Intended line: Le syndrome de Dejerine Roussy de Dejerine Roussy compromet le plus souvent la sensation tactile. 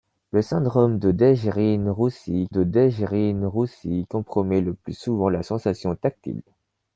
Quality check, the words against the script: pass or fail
pass